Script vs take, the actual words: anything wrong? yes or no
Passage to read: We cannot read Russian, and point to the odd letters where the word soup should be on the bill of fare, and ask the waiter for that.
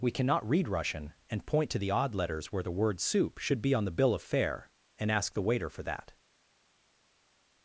no